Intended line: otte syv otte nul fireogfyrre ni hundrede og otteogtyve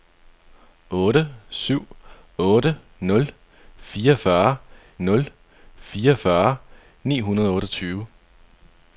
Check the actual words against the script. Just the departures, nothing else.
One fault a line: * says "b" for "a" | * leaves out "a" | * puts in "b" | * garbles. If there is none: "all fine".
* puts in "nul fireogfyrre"